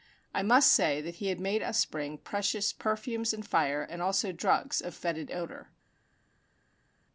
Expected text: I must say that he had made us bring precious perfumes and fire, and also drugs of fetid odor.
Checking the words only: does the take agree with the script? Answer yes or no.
yes